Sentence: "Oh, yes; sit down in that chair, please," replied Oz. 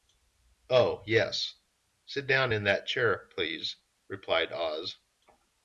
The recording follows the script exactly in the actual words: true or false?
true